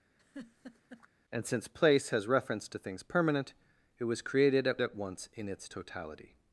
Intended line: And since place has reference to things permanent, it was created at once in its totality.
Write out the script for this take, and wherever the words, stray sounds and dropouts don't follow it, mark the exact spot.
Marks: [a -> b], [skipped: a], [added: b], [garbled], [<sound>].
[laugh] And since place has reference to things permanent, it was created at [added: at] once in its totality.